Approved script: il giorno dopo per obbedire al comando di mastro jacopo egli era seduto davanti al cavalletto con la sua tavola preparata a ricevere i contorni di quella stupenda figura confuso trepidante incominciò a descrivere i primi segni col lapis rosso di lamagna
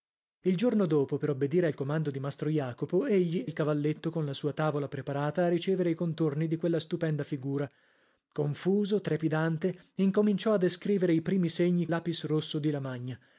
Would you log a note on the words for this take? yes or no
yes